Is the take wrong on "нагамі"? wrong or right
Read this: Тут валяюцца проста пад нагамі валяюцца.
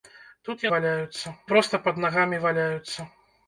right